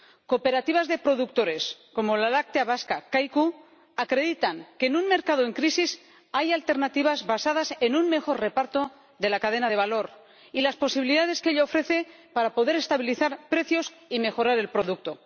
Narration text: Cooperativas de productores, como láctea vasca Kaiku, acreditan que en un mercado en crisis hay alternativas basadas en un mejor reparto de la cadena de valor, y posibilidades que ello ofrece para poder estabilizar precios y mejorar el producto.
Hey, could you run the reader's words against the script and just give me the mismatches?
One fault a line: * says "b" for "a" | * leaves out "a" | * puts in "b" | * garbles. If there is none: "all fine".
* puts in "la"
* puts in "las"